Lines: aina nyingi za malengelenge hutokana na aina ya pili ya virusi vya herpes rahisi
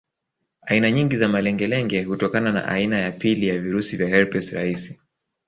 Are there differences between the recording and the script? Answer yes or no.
no